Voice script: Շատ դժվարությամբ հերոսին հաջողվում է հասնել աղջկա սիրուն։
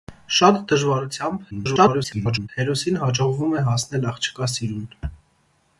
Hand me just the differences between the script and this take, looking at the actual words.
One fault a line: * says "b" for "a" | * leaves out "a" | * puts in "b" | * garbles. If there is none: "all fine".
* garbles